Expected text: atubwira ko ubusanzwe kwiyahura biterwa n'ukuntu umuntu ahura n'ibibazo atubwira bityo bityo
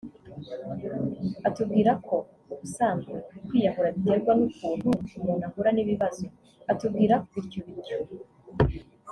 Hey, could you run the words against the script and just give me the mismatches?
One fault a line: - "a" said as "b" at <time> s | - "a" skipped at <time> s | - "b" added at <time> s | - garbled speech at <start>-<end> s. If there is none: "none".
none